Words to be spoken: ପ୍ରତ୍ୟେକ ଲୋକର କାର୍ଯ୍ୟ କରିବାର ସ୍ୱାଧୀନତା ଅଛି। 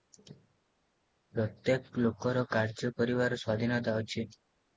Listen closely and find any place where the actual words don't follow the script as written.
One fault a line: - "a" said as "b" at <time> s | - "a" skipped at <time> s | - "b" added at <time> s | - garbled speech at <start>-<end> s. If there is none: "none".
none